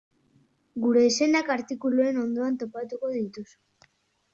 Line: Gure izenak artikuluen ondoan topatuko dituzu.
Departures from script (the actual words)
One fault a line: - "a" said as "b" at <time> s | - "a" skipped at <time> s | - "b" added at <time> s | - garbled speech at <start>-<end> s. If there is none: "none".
none